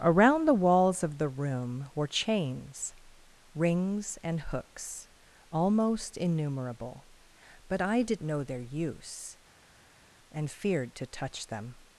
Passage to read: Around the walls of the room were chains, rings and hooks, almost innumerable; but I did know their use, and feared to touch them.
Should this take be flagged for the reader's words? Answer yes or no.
no